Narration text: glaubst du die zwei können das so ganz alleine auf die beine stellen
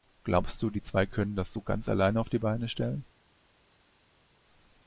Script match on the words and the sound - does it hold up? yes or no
yes